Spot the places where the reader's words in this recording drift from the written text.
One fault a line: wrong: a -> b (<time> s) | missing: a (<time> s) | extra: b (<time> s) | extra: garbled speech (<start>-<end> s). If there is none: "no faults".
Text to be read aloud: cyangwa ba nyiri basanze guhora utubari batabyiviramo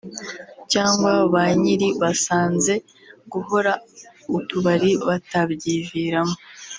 no faults